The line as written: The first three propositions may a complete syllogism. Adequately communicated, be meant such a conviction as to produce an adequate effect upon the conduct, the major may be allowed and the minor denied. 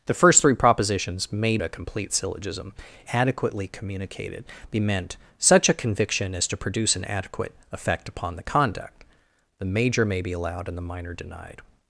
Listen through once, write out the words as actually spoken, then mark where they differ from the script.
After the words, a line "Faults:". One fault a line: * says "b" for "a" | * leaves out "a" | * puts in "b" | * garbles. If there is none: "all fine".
The first three propositions may a complete syllogism. Adequately communicated, be meant such a conviction as to produce an adequate effect upon the conduct, the major may be allowed and the minor denied.
Faults:
all fine